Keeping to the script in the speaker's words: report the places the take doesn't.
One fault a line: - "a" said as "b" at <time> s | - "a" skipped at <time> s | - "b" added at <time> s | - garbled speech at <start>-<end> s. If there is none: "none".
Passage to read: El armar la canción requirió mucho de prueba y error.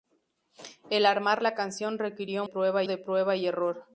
- "mucho" said as "prueba" at 2.4 s